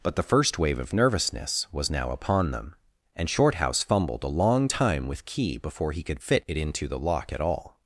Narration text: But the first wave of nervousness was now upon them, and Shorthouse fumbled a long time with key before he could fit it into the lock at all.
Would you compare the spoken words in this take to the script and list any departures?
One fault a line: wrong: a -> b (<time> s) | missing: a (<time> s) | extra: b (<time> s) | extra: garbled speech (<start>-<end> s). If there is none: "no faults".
no faults